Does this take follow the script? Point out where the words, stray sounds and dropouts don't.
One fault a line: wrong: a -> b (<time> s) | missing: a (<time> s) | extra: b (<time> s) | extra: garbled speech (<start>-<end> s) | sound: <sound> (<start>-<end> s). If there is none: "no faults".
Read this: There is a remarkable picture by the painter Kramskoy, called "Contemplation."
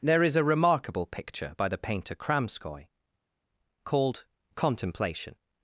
no faults